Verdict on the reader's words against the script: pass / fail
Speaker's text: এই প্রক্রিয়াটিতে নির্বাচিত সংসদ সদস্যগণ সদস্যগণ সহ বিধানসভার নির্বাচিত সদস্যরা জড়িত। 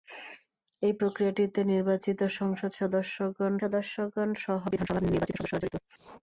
pass